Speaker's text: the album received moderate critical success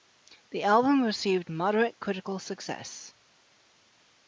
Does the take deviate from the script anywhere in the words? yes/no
no